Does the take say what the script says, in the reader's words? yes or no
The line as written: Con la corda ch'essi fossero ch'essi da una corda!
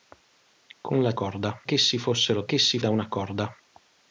yes